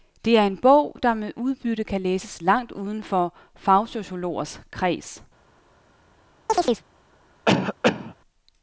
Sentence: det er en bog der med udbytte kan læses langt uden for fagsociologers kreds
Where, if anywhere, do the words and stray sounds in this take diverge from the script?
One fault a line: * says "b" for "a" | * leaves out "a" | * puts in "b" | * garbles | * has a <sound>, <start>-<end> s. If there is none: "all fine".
* has a chirp, 6.5-6.8 s
* has a cough, 7.5-8.1 s